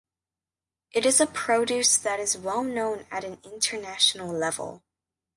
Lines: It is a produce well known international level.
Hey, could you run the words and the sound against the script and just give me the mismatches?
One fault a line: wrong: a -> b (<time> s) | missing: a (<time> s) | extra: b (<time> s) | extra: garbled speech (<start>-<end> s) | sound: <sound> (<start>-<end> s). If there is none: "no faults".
extra: that is (2.0 s)
extra: at an (3.1 s)